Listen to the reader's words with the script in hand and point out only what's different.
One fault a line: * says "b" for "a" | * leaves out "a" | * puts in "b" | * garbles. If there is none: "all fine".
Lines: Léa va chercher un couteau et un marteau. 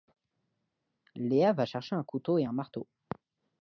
all fine